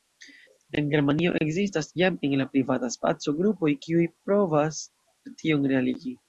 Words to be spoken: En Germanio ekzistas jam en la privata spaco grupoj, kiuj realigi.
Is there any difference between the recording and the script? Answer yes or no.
yes